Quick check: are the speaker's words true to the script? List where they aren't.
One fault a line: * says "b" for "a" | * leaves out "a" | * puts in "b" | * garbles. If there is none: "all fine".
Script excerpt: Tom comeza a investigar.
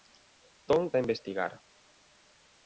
* leaves out "comeza"